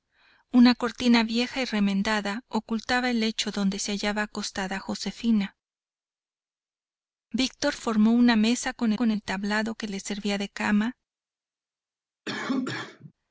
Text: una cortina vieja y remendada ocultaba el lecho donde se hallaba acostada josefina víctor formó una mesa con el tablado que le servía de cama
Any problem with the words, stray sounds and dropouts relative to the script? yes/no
yes